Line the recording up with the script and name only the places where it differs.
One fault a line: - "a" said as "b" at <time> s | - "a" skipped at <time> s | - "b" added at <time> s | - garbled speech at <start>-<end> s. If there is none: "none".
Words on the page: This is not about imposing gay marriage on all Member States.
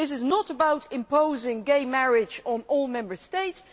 none